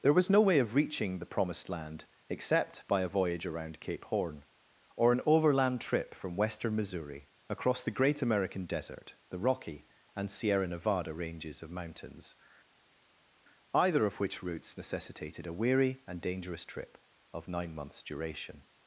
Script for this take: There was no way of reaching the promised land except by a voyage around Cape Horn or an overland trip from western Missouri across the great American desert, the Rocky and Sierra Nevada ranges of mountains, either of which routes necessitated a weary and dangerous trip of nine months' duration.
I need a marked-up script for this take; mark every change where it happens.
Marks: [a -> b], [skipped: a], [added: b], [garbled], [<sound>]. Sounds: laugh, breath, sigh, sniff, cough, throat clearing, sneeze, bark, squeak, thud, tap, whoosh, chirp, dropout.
There was no way of reaching the promised land except by a voyage around Cape Horn or an overland trip from western Missouri across the great American desert, the Rocky and Sierra Nevada ranges of mountains, either of which routes necessitated a weary and dangerous trip of nine months' duration.